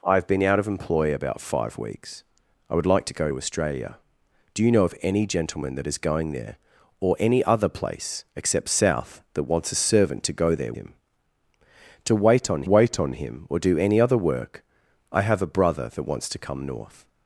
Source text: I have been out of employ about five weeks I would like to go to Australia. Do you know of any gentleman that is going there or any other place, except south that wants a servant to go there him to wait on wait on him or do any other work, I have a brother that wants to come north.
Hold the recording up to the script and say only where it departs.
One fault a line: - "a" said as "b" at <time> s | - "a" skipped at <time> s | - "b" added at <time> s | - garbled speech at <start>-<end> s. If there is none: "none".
none